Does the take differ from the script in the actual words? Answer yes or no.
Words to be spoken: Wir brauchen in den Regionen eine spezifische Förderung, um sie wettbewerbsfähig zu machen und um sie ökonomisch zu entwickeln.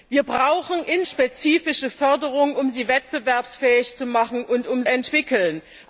yes